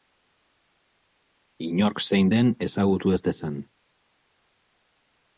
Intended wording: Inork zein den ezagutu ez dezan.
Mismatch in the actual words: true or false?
false